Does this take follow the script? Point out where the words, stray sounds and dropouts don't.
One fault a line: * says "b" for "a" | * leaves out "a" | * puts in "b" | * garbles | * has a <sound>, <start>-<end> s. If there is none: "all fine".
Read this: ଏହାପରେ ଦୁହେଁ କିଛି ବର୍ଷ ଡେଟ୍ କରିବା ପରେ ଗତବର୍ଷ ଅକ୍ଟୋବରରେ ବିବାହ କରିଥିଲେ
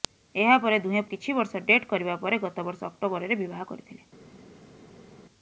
all fine